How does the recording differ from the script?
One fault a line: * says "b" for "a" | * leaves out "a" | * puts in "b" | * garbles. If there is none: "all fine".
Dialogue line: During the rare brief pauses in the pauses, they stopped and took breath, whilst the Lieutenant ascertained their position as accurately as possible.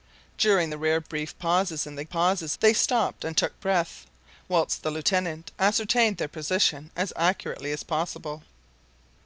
all fine